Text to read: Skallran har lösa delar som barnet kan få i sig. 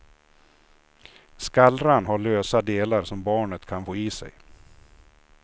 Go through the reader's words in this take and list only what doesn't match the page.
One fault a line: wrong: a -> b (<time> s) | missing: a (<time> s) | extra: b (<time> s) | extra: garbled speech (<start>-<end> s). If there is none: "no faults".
no faults